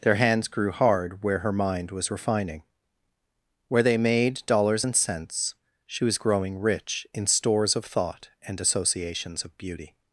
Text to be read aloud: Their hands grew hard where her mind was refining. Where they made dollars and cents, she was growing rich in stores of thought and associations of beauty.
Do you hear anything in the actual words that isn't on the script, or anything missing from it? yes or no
no